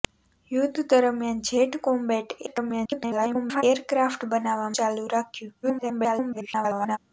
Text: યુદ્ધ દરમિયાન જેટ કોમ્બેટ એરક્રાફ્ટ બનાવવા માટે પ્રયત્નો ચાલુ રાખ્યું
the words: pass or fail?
fail